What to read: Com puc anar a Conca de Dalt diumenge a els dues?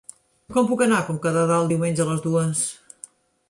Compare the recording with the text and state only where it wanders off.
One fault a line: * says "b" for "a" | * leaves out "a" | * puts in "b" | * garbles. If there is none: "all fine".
* says "les" for "els"